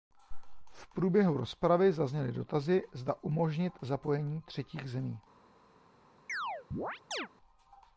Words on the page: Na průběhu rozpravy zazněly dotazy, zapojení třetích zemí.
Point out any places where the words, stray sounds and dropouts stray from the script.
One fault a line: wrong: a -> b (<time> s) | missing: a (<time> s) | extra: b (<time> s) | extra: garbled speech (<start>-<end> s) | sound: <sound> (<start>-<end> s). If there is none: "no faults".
wrong: Na -> V (0.7 s)
extra: zda umožnit (2.9 s)
sound: chirp (6.3-7.3 s)